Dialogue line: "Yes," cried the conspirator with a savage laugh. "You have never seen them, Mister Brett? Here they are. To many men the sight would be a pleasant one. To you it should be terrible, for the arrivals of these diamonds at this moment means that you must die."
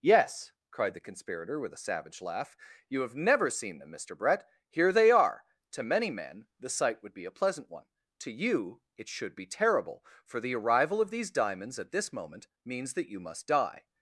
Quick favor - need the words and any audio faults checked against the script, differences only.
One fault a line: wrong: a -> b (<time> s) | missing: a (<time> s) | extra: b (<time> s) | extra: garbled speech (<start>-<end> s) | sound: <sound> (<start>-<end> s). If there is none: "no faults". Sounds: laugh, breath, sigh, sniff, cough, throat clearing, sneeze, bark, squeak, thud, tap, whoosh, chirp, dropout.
wrong: arrivals -> arrival (10.6 s)